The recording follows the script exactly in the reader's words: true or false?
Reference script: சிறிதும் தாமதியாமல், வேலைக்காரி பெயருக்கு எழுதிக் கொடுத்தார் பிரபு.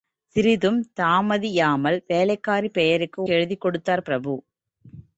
true